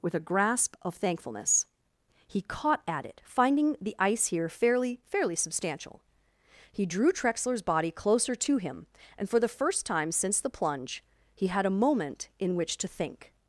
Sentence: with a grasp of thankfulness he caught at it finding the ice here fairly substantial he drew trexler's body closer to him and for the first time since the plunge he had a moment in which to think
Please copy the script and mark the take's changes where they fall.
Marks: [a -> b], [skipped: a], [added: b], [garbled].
with a grasp of thankfulness he caught at it finding the ice here fairly [added: fairly] substantial he drew trexler's body closer to him and for the first time since the plunge he had a moment in which to think